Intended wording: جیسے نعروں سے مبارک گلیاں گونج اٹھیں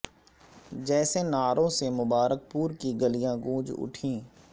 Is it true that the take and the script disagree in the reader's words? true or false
true